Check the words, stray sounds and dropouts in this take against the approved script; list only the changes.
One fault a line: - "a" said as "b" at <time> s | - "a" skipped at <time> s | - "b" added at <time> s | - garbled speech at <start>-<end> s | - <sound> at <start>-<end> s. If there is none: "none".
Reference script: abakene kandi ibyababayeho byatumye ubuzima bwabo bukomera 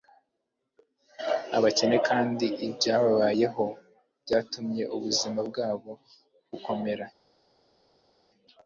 none